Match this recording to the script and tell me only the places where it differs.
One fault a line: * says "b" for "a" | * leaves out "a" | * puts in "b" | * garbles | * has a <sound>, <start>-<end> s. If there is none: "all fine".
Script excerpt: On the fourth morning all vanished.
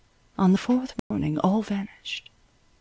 * has a dropout, 1.0-1.1 s